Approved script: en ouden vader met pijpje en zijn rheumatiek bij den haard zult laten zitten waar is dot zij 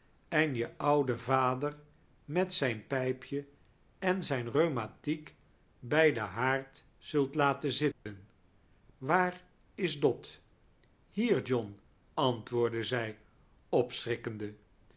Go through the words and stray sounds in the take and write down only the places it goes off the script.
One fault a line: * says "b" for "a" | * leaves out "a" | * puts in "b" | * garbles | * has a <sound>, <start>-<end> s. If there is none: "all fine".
* puts in "je"
* puts in "zijn"
* has a dropout, 7.9-8.1 s
* puts in "hier john antwoordde"